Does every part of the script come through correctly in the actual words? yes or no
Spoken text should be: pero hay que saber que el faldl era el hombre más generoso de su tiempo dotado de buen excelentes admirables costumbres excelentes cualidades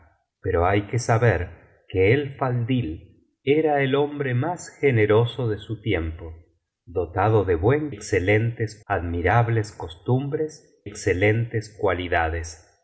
yes